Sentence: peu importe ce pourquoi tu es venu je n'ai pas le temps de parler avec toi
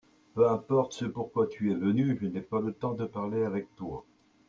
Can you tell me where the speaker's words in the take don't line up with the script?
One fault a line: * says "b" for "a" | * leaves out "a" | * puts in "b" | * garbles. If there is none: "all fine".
all fine